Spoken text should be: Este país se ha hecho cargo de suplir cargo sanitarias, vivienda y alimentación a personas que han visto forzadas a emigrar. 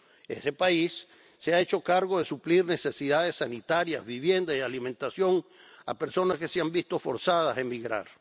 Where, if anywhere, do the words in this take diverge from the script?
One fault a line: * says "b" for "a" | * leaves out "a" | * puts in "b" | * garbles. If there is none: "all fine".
* says "Ese" for "Este"
* says "necesidades" for "cargo"
* puts in "se"